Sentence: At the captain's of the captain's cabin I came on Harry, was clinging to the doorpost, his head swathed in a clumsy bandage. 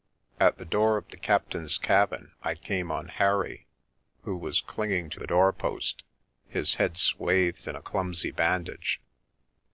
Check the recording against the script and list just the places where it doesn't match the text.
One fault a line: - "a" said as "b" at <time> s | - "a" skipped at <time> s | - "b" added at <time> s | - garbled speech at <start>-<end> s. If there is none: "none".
- "captain's" said as "door" at 0.7 s
- "who" added at 4.2 s